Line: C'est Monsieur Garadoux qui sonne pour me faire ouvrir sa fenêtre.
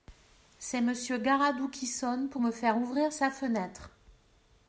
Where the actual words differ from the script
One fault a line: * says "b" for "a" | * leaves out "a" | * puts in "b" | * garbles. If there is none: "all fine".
all fine